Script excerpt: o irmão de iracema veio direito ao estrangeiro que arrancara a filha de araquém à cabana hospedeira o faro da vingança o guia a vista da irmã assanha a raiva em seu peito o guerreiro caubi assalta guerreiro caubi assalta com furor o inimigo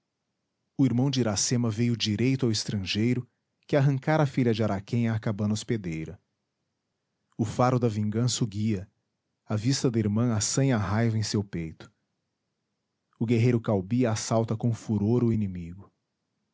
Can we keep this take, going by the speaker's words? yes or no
no